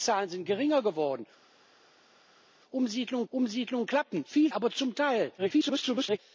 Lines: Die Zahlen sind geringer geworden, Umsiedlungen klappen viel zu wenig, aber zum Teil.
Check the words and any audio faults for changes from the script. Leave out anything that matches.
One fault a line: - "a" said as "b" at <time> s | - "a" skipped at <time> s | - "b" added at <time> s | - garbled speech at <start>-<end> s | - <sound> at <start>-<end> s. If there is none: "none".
- "Umsiedlungen" added at 3.3 s
- "zu wenig" skipped at 4.5 s
- garbled speech at 5.4-6.2 s